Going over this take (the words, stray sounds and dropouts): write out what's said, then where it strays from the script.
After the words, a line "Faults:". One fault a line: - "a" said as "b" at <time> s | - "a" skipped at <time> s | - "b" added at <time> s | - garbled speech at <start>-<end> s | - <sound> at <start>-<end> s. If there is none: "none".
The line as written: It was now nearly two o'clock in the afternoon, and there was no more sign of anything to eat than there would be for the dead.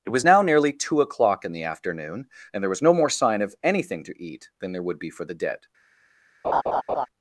It was now nearly two o'clock in the afternoon, and there was no more sign of anything to eat than there would be for the dead.
Faults:
- laugh at 6.4-7.1 s